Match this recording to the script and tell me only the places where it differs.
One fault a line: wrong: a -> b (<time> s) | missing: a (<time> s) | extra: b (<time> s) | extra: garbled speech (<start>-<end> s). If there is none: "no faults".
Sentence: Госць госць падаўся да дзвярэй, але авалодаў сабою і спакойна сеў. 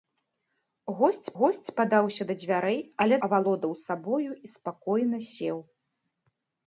no faults